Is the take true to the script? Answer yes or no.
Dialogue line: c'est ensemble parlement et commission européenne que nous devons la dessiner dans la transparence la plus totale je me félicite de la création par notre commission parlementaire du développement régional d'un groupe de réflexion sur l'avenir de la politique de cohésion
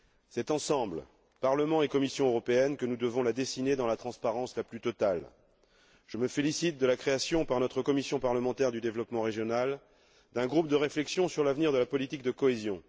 yes